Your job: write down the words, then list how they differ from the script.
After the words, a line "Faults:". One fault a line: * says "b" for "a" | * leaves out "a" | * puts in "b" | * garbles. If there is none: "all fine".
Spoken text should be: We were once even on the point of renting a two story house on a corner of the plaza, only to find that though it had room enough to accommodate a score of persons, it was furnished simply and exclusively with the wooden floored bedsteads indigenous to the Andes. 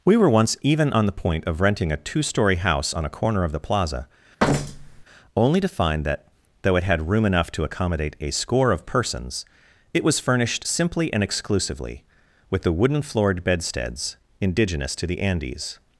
We were once even on the point of renting a two story house on a corner of the plaza, only to find that though it had room enough to accommodate a score of persons, it was furnished simply and exclusively with the wooden floored bedsteads indigenous to the Andes.
Faults:
all fine